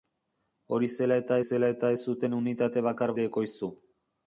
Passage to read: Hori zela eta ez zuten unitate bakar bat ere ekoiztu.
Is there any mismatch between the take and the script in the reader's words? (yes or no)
yes